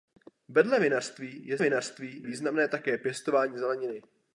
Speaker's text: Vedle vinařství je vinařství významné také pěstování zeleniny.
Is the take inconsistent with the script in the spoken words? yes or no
no